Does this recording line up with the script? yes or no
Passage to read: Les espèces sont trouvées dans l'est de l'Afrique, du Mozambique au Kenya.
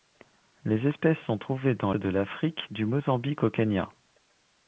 no